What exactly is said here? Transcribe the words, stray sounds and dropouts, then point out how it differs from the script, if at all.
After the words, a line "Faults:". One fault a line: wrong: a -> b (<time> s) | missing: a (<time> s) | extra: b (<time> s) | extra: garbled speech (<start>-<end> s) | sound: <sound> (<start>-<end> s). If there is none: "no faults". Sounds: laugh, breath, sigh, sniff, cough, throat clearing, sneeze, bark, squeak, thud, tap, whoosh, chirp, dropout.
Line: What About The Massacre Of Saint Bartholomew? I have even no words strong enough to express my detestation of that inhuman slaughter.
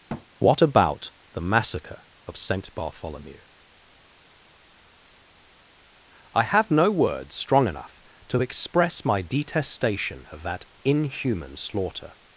What About The Massacre Of Saint Bartholomew? I have no words strong enough to express my detestation of that inhuman slaughter.
Faults:
sound: thud (0.1-0.3 s)
missing: even (6.7 s)